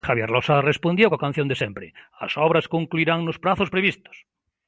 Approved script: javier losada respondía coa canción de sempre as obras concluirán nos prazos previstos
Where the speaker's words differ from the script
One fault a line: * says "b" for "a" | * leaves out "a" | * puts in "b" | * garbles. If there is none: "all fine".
all fine